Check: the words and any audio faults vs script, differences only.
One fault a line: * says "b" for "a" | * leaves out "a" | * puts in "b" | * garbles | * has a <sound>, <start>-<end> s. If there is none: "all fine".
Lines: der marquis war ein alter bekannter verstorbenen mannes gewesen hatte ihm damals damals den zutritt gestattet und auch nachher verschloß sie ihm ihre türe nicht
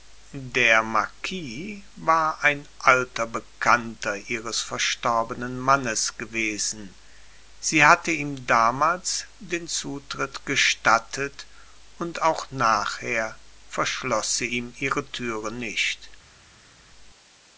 * puts in "ihres"
* puts in "sie"
* leaves out "damals"